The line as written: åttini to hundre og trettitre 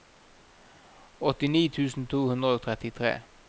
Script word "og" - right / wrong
right